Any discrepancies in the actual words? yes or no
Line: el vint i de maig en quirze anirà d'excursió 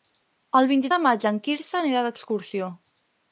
no